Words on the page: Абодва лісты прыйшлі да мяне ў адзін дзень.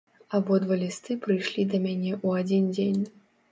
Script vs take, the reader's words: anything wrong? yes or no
no